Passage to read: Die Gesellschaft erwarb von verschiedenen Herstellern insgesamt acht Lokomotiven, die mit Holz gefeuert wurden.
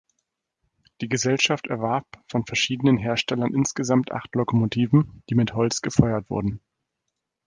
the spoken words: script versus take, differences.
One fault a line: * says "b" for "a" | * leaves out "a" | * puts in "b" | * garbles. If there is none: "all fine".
all fine